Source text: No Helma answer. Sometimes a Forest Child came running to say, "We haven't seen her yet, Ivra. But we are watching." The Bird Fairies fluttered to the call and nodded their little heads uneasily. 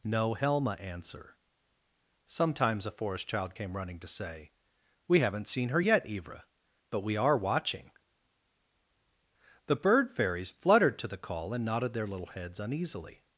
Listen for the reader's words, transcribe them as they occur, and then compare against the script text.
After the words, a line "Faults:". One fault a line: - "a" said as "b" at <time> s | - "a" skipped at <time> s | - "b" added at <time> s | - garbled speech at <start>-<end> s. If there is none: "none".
No Helma answer. Sometimes a Forest Child came running to say, "We haven't seen her yet, Ivra. But we are watching." The Bird Fairies fluttered to the call and nodded their little heads uneasily.
Faults:
none